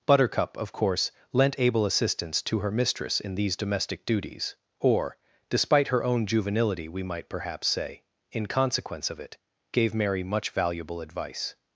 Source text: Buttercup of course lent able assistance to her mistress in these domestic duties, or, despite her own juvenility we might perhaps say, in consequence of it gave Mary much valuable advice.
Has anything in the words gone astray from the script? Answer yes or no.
no